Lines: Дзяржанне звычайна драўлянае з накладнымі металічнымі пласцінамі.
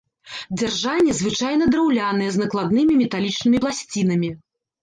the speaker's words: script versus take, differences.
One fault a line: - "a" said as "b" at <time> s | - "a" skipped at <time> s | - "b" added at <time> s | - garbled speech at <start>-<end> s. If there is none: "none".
none